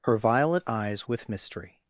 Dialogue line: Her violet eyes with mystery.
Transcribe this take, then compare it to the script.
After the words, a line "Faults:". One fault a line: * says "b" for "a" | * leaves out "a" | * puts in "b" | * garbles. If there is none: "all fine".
Her violet eyes with mystery.
Faults:
all fine